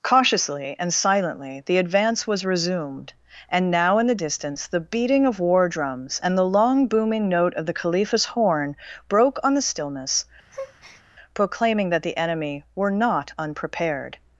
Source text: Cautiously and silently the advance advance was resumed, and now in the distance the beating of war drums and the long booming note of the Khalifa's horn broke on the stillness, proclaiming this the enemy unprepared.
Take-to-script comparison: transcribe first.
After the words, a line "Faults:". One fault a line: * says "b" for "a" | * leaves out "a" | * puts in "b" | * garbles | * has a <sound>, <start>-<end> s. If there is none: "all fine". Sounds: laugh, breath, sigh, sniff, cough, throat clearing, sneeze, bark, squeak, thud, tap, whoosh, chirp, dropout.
Cautiously and silently the advance was resumed, and now in the distance the beating of war drums and the long booming note of the Khalifa's horn broke on the stillness, proclaiming that the enemy were not unprepared.
Faults:
* leaves out "advance"
* has a breath, 10.5-11.0 s
* says "that" for "this"
* puts in "were not"